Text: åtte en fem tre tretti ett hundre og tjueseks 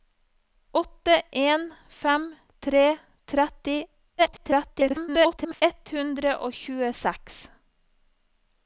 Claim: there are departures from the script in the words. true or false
true